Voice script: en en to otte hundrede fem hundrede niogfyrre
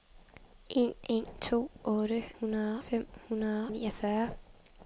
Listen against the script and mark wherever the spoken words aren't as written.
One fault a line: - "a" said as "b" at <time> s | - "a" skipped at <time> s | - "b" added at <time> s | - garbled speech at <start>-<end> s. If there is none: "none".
none